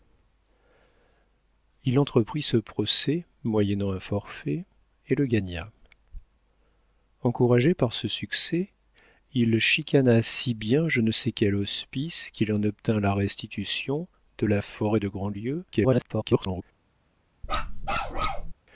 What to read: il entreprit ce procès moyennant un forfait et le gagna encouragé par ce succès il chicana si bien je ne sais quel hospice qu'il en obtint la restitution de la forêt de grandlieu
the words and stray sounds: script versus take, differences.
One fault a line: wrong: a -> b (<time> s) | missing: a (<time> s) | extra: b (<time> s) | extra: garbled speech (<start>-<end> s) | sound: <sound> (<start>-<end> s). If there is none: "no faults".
extra: garbled speech (15.7-16.6 s)
sound: bark (17.4-18.5 s)